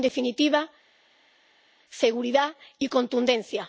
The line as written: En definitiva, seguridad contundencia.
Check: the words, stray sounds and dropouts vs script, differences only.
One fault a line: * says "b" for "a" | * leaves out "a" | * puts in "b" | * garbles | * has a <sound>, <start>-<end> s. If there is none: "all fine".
* puts in "y"